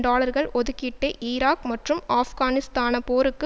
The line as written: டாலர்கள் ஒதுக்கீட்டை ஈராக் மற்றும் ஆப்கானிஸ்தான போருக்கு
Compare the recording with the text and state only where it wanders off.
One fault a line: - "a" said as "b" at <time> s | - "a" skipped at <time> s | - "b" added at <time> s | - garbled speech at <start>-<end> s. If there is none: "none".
none